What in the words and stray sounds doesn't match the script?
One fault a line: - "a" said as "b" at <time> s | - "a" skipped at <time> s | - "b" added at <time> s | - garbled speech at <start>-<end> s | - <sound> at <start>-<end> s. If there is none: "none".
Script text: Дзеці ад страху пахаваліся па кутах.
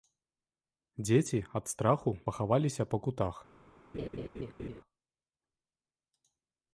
- laugh at 3.9-4.8 s